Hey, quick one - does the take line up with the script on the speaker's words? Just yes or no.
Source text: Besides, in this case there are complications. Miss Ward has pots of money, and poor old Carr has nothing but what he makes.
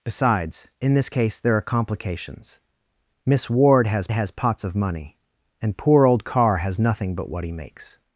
no